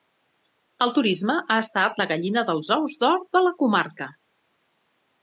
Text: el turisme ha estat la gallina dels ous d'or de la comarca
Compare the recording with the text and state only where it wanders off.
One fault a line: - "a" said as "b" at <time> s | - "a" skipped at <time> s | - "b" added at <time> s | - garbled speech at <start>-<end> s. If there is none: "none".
none